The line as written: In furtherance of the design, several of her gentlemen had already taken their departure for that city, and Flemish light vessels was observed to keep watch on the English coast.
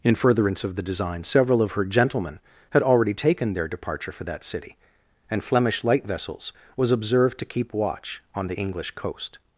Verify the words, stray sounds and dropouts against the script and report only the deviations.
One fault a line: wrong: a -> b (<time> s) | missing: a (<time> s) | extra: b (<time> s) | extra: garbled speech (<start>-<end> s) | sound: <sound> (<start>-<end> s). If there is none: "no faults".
no faults